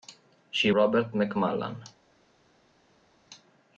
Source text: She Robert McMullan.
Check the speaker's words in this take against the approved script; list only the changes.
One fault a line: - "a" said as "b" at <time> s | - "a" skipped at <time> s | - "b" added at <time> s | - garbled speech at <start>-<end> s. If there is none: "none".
none